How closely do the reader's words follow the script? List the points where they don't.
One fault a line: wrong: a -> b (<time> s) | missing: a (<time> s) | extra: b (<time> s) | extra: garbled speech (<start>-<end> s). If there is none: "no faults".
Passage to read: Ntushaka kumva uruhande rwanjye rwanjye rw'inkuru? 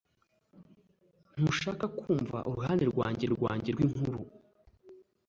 no faults